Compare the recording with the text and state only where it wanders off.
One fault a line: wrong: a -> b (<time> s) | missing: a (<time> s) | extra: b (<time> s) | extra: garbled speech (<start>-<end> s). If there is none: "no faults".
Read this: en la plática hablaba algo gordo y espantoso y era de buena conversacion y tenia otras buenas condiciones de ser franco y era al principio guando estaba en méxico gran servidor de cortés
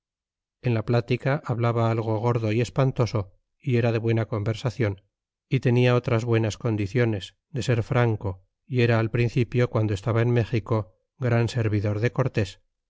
no faults